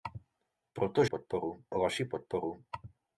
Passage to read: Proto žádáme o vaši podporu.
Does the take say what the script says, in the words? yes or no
no